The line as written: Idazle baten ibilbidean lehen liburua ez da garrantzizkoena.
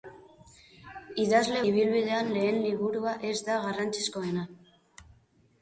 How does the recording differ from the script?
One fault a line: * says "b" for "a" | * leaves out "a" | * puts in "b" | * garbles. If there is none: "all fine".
* leaves out "baten"